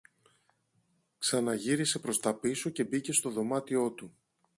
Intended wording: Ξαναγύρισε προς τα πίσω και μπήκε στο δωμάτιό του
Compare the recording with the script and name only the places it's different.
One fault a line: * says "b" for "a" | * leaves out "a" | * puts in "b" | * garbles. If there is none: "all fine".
all fine